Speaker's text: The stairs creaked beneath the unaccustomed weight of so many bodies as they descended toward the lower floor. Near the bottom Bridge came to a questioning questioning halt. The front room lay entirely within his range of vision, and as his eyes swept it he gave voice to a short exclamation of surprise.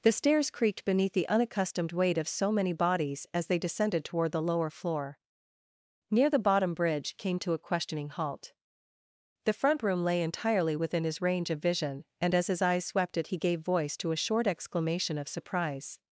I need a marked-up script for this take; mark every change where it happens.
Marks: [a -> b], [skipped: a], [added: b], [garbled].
The stairs creaked beneath the unaccustomed weight of so many bodies as they descended toward the lower floor. Near the bottom Bridge came to a questioning [skipped: questioning] halt. The front room lay entirely within his range of vision, and as his eyes swept it he gave voice to a short exclamation of surprise.